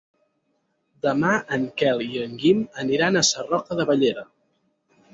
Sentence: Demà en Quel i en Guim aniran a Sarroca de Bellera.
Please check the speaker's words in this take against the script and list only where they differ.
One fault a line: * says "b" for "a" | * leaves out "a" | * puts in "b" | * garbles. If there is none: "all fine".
all fine